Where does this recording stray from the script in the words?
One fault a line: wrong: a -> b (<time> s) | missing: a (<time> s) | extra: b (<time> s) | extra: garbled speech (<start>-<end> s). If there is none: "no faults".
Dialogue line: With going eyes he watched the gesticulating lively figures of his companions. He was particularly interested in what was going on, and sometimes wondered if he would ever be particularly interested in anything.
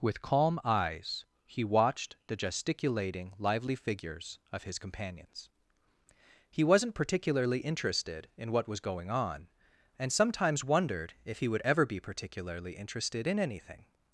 wrong: going -> calm (0.2 s)
wrong: was -> wasn't (6.6 s)